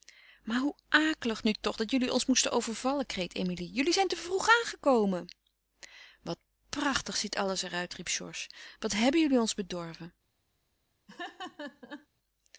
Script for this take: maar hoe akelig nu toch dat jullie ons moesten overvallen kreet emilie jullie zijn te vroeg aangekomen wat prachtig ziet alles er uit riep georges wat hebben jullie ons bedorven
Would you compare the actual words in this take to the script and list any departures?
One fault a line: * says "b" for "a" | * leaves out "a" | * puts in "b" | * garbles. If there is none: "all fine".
all fine